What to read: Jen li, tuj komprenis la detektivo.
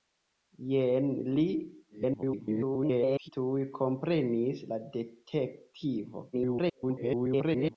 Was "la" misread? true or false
false